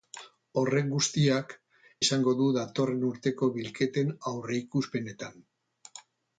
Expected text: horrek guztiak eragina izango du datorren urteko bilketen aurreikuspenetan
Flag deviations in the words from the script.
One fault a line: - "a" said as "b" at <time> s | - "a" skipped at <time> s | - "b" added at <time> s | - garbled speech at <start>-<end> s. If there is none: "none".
- "eragina" skipped at 1.5 s